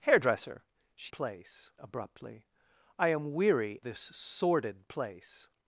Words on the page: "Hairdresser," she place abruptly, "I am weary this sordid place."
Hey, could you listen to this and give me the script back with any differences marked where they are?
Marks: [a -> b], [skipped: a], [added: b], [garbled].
"Hairdresser," she place abruptly, "I am weary this sordid place."